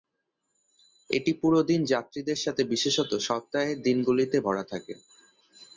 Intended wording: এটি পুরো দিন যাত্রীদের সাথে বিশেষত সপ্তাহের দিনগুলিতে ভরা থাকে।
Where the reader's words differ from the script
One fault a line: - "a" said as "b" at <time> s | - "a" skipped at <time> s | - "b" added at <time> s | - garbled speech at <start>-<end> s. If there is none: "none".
none